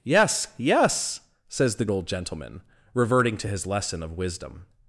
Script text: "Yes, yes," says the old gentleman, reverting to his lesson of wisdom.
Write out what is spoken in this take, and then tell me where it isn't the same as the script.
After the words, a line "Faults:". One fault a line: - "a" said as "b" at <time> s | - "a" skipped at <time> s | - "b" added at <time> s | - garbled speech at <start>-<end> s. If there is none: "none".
"Yes, yes," says the old gentleman, reverting to his lesson of wisdom.
Faults:
none